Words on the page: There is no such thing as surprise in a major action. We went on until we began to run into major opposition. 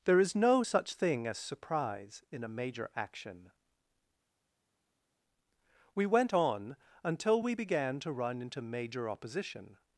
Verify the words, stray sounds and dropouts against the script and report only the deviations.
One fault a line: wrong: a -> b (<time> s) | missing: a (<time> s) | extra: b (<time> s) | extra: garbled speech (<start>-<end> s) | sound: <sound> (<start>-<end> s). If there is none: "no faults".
no faults